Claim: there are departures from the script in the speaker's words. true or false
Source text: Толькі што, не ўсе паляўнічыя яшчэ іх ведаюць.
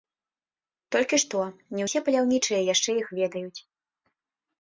false